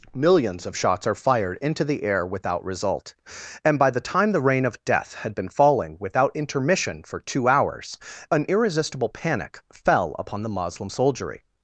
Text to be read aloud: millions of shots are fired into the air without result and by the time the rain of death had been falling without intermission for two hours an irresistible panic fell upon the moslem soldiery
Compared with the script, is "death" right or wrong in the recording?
right